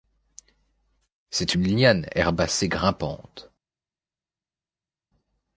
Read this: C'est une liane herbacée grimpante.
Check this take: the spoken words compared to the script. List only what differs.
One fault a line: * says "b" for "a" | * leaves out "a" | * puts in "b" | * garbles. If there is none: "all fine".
all fine